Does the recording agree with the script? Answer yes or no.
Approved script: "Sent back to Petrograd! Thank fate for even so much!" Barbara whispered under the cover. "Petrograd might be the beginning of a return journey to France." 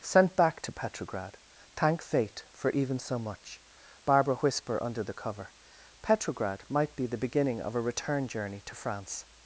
no